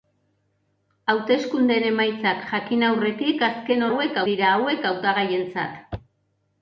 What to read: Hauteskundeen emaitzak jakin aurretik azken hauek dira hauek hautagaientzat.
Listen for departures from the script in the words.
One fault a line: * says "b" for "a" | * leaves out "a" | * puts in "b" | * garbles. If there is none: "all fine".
all fine